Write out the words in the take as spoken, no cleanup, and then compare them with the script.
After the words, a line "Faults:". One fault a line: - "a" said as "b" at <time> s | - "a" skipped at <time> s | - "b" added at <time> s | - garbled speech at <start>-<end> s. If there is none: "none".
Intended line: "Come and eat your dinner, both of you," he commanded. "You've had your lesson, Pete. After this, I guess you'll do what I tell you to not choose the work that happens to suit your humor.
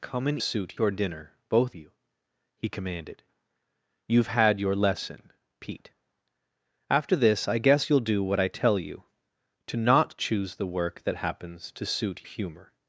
"Come and suit your dinner, both you," he commanded. "You've had your lesson, Pete. After this, I guess you'll do what I tell you to not choose the work that happens to suit humor.
Faults:
- "eat" said as "suit" at 0.4 s
- "of" skipped at 1.8 s
- "your" skipped at 12.3 s